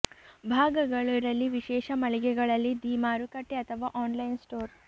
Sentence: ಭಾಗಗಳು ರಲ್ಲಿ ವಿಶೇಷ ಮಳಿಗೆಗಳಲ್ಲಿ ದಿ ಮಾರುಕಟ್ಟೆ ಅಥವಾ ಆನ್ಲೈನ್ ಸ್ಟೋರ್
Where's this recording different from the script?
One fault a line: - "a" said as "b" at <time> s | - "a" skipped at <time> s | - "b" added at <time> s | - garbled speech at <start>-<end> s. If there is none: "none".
none